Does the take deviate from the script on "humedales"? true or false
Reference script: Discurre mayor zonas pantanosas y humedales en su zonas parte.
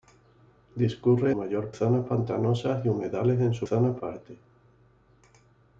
false